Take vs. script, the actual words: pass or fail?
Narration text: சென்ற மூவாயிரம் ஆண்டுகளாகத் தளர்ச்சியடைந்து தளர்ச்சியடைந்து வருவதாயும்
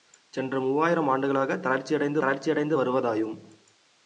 pass